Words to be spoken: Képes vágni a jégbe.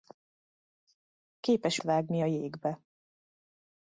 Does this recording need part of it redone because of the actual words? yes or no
no